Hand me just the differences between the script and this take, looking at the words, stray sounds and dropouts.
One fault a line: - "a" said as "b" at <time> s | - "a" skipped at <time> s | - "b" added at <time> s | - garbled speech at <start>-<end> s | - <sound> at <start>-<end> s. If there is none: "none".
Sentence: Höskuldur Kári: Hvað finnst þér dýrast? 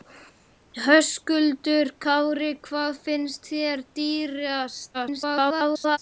- garbled speech at 4.9-6.0 s